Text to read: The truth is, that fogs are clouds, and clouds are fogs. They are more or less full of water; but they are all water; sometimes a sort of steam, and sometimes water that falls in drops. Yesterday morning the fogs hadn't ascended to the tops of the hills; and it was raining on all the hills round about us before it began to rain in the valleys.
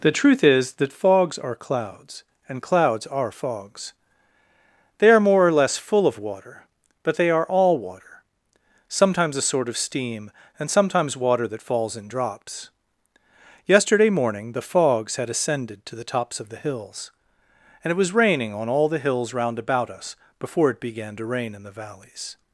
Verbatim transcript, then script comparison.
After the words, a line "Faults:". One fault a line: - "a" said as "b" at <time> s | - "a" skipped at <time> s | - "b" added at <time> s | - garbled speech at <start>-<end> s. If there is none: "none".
The truth is, that fogs are clouds, and clouds are fogs. They are more or less full of water; but they are all water; sometimes a sort of steam, and sometimes water that falls in drops. Yesterday morning the fogs had ascended to the tops of the hills; and it was raining on all the hills round about us before it began to rain in the valleys.
Faults:
- "hadn't" said as "had" at 15.2 s